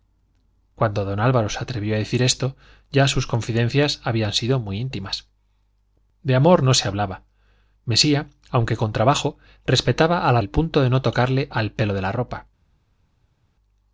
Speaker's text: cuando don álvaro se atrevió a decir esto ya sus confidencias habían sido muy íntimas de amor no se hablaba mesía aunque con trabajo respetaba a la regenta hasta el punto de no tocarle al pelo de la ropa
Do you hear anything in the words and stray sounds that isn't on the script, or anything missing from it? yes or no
yes